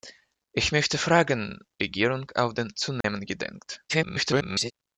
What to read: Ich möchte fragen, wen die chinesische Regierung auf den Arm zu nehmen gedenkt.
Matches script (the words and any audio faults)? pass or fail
fail